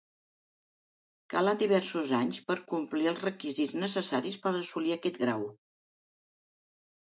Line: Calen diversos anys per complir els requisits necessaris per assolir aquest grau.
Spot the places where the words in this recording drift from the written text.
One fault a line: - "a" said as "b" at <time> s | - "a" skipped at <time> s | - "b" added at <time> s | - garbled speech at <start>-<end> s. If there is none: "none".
none